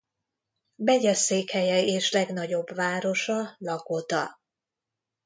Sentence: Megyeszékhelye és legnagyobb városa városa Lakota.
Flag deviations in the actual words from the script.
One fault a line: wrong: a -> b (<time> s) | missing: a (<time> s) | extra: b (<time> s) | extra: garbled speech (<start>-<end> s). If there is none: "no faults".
missing: városa (3.6 s)